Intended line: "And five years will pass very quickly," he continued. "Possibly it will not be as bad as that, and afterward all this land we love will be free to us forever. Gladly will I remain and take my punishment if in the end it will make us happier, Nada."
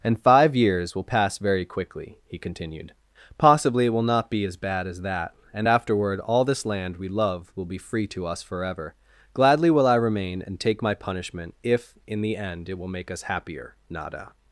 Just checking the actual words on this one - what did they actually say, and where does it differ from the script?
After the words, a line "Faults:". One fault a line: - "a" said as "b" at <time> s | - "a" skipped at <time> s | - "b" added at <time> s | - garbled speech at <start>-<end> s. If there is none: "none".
"And five years will pass very quickly," he continued. "Possibly it will not be as bad as that, and afterward all this land we love will be free to us forever. Gladly will I remain and take my punishment if in the end it will make us happier, Nada."
Faults:
none